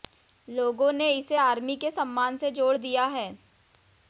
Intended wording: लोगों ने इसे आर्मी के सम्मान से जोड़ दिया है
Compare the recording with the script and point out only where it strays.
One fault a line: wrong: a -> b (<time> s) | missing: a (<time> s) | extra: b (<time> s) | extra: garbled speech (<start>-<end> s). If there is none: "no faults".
no faults